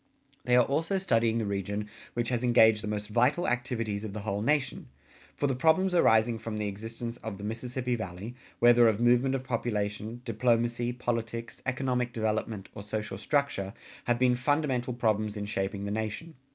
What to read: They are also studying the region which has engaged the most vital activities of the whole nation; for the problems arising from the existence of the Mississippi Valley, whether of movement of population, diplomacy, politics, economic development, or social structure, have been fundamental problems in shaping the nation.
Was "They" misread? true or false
false